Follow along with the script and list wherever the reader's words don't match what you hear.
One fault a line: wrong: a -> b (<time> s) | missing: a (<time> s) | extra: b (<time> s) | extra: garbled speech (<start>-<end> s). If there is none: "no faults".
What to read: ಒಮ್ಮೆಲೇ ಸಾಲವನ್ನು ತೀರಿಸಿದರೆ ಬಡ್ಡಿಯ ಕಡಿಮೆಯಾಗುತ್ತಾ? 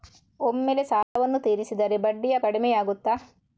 no faults